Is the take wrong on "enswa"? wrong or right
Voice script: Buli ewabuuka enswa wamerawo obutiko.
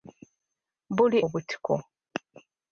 wrong